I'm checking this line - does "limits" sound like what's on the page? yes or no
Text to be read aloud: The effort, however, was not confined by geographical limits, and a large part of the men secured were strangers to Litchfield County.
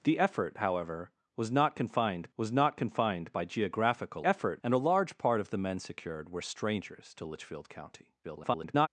no